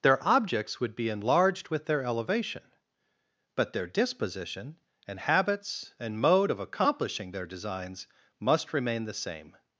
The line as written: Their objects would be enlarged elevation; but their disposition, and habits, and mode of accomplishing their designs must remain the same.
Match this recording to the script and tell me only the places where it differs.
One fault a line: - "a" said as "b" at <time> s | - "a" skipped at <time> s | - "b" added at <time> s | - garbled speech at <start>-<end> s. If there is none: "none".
- "with their" added at 1.7 s